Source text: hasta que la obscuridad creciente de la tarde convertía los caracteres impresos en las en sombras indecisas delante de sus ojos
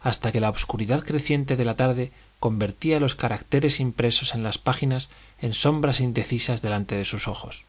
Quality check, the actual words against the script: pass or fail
fail